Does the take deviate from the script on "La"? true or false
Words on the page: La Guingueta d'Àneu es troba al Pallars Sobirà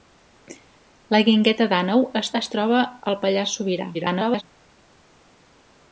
false